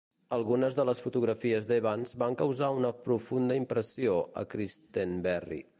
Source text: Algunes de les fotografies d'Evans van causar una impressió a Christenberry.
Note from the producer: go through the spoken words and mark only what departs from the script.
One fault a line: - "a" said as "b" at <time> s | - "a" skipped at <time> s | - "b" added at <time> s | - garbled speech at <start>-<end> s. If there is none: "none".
- "profunda" added at 3.1 s